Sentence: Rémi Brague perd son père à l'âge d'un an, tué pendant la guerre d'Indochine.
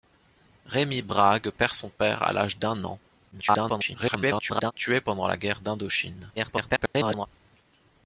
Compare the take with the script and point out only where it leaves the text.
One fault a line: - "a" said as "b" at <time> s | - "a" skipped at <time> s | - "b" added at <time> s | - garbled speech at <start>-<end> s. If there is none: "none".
- garbled speech at 3.3-4.7 s
- garbled speech at 6.4-7.3 s